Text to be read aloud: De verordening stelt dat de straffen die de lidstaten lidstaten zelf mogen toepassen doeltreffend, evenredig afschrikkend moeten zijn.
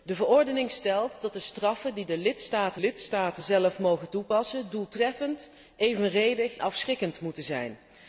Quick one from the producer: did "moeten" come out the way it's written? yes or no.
yes